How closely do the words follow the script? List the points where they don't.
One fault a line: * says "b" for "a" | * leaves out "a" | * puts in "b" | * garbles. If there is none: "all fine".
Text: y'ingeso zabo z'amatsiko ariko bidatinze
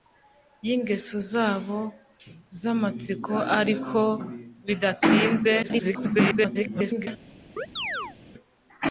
* garbles